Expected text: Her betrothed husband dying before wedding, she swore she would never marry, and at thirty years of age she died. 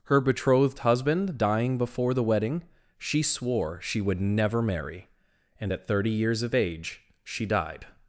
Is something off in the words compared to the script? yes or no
yes